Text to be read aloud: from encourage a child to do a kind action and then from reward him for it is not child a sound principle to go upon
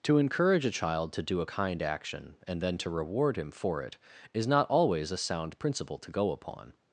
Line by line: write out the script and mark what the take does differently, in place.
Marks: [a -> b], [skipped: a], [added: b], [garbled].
[from -> to] encourage a child to do a kind action and then [from -> to] reward him for it is not [child -> always] a sound principle to go upon